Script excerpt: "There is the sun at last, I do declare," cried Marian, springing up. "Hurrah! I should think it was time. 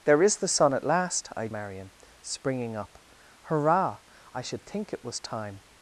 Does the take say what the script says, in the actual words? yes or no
no